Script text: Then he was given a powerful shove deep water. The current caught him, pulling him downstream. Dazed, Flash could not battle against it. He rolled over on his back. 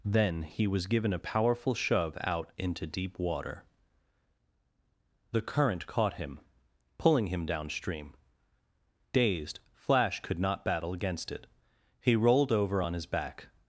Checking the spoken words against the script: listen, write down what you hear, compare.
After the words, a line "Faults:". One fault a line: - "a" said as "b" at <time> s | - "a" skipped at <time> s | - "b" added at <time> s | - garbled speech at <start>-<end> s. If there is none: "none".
Then he was given a powerful shove out into deep water. The current caught him, pulling him downstream. Dazed, Flash could not battle against it. He rolled over on his back.
Faults:
- "out into" added at 2.2 s